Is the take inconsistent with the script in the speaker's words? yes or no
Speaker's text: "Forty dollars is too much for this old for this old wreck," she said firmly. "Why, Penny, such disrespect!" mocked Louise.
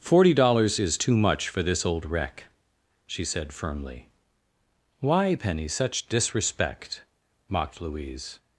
yes